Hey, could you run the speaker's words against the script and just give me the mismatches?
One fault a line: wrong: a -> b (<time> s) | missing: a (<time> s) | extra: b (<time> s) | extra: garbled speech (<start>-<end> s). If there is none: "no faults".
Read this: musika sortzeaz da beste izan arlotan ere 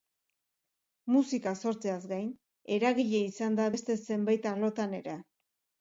extra: gain eragile izan (2.1 s)
wrong: izan -> zenbait (4.1 s)